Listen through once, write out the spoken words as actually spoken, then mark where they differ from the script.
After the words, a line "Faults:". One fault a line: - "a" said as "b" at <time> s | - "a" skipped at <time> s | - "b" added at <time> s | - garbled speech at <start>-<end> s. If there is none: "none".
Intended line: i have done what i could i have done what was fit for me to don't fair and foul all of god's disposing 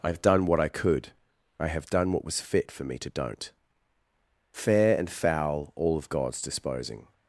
i have done what i could i have done what was fit for me to don't fair and foul all of god's disposing
Faults:
none